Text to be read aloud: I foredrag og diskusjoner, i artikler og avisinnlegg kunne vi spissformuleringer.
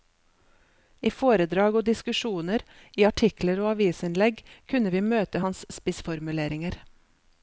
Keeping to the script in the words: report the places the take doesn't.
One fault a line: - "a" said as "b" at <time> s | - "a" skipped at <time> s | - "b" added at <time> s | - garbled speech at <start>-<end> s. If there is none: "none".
- "møte hans" added at 5.1 s